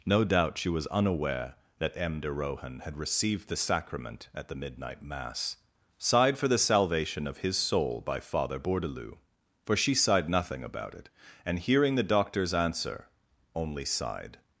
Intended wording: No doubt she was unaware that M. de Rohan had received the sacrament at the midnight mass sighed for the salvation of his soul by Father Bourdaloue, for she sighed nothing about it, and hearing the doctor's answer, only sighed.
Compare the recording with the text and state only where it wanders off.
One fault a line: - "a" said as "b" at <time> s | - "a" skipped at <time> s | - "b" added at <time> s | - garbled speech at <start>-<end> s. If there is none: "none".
none